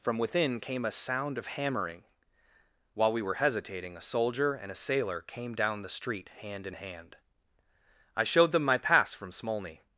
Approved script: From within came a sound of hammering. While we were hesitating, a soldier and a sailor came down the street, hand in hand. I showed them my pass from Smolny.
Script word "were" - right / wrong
right